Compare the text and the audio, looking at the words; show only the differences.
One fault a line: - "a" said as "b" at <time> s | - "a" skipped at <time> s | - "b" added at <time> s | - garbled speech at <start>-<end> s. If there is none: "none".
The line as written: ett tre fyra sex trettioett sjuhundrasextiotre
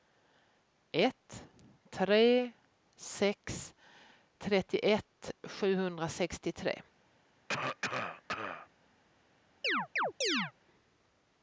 - "fyra" skipped at 2.5 s